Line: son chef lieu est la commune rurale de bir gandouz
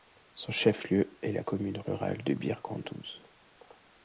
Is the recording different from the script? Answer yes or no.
no